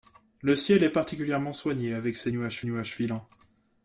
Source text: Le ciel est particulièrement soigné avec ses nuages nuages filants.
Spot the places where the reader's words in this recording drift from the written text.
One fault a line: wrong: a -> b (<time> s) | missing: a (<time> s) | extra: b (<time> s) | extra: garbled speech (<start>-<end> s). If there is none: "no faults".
no faults